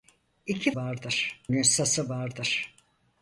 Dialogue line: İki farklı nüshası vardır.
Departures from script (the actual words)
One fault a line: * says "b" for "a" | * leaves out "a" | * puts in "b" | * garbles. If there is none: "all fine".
* says "vardır" for "farklı"